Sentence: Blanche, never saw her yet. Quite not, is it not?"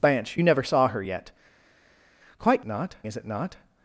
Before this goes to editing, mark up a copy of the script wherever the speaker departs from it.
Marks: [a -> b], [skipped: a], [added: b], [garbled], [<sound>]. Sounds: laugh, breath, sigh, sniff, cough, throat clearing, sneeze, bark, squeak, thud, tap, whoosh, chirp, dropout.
Blanche, never saw her yet. Quite not, is it not?"